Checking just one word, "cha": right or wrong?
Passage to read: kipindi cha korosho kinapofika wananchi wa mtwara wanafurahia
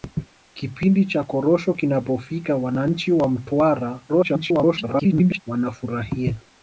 right